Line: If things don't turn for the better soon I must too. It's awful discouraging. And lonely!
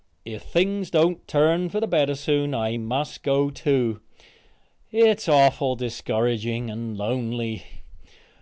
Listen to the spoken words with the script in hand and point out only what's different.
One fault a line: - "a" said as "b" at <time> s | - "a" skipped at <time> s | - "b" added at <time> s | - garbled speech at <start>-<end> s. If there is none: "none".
- "go" added at 3.2 s